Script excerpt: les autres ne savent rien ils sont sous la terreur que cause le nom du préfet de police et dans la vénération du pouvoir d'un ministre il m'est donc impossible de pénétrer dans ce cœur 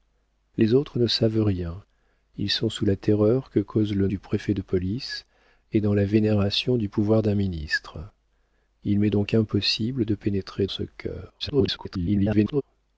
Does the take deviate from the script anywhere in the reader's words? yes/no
yes